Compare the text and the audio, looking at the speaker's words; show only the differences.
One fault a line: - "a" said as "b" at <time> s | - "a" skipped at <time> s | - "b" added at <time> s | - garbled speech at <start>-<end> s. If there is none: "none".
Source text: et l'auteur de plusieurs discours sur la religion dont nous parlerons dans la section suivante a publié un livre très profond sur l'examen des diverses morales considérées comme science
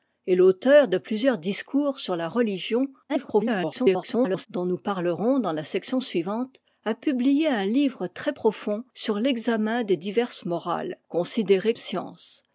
- garbled speech at 3.1-4.5 s
- "comme" skipped at 11.7 s